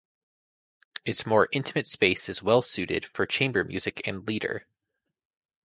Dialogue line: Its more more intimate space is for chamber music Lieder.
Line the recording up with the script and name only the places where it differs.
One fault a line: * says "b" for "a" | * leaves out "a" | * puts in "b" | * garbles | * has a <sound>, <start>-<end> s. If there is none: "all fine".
* leaves out "more"
* puts in "well suited"
* puts in "and"